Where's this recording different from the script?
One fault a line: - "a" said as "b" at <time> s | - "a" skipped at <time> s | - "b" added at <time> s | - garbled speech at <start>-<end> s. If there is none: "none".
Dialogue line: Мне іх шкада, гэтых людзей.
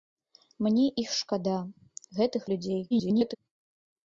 - garbled speech at 2.9-3.4 s